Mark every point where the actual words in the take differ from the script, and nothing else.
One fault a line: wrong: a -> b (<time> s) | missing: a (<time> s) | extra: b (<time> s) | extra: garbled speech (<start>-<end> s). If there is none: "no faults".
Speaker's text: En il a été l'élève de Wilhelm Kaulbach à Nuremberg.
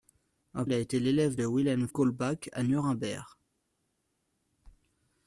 no faults